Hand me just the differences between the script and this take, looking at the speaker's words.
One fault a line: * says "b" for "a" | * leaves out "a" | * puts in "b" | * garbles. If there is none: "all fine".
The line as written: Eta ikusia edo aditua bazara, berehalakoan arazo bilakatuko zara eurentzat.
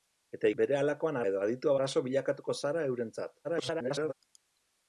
* says "berehalakoan" for "ikusia"
* leaves out "bazara berehalakoan"
* garbles